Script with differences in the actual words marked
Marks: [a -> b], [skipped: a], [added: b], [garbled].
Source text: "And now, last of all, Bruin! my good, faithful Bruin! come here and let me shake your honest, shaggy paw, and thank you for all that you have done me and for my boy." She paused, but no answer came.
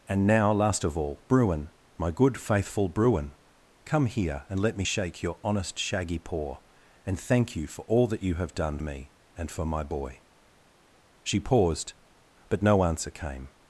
"And now, last of all, Bruin! my good, faithful Bruin! come here and let me shake your honest, shaggy paw, and thank you for all that you have done me and for my boy." She paused, but no answer came.